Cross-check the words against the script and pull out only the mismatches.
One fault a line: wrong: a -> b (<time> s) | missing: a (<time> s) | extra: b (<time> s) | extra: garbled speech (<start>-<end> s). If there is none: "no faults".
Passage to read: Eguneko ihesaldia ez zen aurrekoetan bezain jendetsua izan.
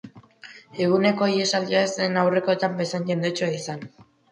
no faults